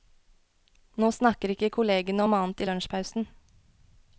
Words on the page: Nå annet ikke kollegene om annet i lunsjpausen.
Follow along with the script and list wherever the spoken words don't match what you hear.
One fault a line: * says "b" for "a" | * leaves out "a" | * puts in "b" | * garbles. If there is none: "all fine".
* says "snakker" for "annet"